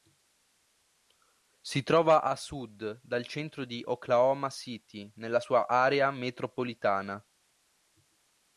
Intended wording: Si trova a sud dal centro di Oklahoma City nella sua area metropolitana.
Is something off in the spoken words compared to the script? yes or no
no